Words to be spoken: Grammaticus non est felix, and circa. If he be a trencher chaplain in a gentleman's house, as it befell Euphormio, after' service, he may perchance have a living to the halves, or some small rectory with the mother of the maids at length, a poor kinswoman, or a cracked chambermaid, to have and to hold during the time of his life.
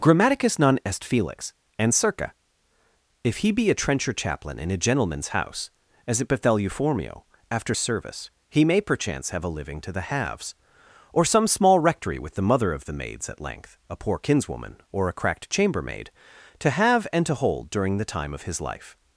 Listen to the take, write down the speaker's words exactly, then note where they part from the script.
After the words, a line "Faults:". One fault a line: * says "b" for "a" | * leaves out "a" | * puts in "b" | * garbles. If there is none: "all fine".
Grammaticus non est felix, and circa. If he be a trencher chaplain in a gentleman's house, as it befell Euphormio, after' service, he may perchance have a living to the halves, or some small rectory with the mother of the maids at length, a poor kinswoman, or a cracked chambermaid, to have and to hold during the time of his life.
Faults:
all fine